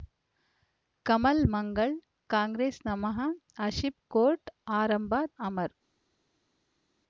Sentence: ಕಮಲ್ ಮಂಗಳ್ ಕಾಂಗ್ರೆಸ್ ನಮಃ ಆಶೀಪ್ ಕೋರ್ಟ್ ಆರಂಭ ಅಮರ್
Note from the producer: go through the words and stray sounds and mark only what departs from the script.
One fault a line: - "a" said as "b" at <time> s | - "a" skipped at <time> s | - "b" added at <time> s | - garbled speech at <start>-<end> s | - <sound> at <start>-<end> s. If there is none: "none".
none